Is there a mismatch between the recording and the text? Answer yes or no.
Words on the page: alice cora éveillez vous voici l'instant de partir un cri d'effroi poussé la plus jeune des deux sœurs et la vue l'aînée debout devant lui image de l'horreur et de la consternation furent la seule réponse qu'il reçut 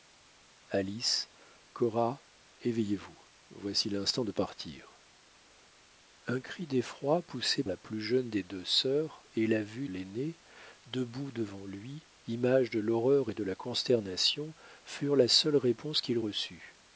no